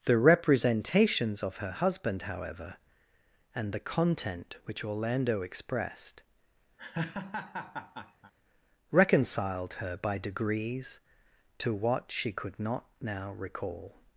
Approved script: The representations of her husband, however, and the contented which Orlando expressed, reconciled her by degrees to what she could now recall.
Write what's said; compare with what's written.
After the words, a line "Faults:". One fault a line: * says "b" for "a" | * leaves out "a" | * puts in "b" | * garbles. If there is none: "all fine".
The representations of her husband, however, and the content which Orlando expressed, reconciled her by degrees to what she could not now recall.
Faults:
* says "content" for "contented"
* puts in "not"